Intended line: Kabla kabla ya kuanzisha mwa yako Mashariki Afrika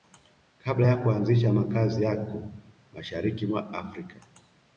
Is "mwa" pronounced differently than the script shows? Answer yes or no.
yes